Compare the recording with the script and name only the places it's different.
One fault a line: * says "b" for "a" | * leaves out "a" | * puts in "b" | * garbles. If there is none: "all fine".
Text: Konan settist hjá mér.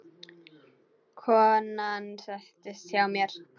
all fine